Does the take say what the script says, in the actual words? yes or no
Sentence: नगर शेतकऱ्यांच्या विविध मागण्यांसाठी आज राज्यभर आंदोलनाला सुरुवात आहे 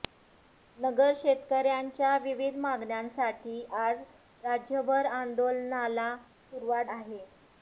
yes